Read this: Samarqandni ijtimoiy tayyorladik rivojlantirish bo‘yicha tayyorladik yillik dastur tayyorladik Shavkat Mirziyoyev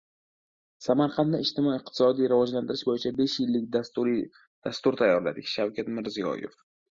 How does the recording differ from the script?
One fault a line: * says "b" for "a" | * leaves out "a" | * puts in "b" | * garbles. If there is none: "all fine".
* says "iqtisodiy" for "tayyorladik"
* says "besh" for "tayyorladik"